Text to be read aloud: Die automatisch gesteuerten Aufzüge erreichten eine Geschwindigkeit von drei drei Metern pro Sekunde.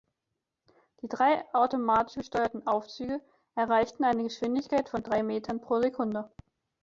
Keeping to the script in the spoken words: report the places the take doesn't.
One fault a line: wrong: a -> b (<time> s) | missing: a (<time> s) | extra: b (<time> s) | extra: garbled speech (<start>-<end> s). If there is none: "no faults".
extra: drei (1.1 s)
missing: drei (5.2 s)